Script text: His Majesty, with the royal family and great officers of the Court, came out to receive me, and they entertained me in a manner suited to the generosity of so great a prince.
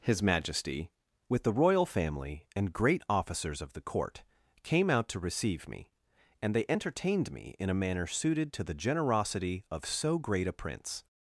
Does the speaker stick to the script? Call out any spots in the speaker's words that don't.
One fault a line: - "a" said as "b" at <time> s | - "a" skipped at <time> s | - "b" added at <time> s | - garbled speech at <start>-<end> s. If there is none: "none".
none